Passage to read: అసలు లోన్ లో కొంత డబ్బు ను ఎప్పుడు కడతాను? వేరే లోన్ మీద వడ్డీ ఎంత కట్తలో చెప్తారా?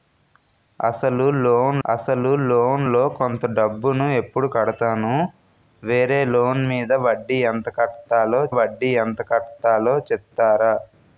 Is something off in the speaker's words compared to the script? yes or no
yes